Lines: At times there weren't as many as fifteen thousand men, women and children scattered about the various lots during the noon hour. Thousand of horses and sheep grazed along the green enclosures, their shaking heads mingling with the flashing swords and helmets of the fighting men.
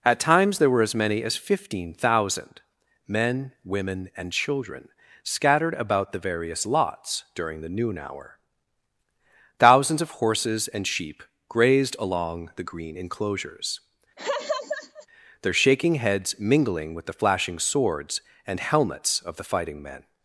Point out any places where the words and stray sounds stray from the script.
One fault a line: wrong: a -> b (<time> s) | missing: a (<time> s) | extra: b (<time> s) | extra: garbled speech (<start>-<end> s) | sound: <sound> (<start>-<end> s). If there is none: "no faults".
wrong: weren't -> were (0.7 s)
wrong: Thousand -> Thousands (9.6 s)
sound: laugh (14.2-15.1 s)